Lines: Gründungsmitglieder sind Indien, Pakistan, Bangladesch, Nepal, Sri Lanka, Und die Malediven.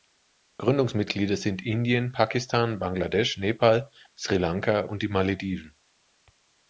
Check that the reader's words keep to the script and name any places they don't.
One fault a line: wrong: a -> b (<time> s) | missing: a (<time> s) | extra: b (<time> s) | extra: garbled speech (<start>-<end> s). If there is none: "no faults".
no faults